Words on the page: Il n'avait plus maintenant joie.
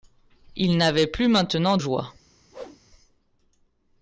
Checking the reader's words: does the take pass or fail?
pass